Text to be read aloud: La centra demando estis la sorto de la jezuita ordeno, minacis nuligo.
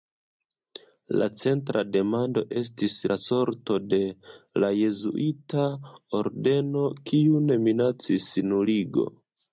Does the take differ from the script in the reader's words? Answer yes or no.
yes